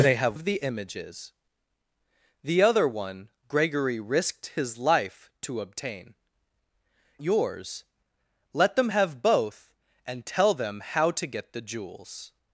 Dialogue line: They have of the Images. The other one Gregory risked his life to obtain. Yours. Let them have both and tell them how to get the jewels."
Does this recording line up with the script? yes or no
yes